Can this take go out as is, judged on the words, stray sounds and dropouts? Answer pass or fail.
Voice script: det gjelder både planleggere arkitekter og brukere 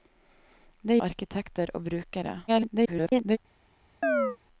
fail